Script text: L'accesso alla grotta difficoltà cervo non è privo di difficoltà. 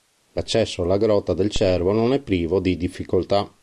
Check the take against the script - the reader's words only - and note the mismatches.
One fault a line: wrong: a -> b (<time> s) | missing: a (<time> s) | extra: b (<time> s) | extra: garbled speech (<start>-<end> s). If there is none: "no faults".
wrong: difficoltà -> del (1.4 s)